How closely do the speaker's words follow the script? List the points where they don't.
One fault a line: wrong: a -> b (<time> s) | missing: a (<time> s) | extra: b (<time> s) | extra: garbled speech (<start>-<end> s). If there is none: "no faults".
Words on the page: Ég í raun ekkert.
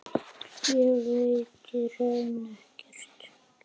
extra: veit (1.1 s)